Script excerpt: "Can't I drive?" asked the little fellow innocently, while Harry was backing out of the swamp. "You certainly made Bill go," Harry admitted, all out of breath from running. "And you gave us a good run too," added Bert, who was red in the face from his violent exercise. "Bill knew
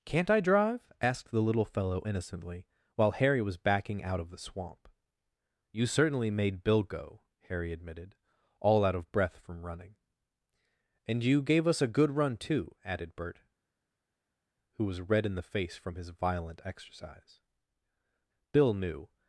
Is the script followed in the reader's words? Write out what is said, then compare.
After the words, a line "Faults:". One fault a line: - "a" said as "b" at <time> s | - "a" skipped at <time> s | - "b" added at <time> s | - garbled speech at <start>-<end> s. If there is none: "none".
"Can't I drive?" asked the little fellow innocently, while Harry was backing out of the swamp. "You certainly made Bill go," Harry admitted, all out of breath from running. "And you gave us a good run too," added Bert, who was red in the face from his violent exercise. "Bill knew
Faults:
none